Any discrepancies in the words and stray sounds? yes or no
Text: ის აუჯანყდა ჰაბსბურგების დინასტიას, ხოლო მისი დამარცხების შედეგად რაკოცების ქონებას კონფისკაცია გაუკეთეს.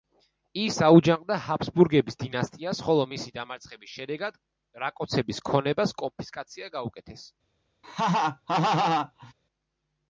yes